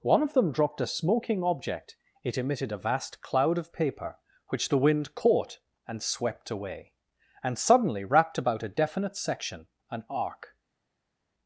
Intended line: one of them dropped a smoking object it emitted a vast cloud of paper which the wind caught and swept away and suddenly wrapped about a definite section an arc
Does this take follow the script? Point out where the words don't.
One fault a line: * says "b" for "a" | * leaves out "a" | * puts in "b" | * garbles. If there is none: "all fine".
all fine